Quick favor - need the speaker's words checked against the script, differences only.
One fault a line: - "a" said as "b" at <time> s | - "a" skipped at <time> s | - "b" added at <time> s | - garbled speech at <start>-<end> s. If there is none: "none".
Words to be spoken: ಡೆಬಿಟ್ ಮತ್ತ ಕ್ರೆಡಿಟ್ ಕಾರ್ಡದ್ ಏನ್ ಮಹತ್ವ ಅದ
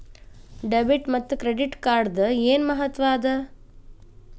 none